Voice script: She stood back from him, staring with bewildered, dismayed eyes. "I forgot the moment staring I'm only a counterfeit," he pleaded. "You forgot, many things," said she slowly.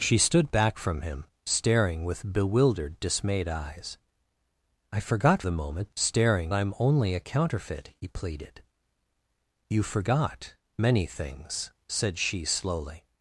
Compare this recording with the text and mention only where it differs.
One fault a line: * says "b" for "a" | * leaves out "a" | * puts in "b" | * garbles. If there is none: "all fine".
all fine